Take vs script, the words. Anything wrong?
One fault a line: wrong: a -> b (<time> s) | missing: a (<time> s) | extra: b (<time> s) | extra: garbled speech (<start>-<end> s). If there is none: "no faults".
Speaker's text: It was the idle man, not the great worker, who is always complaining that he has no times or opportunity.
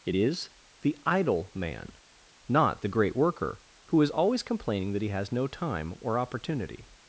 wrong: was -> is (0.1 s)
wrong: times -> time (5.5 s)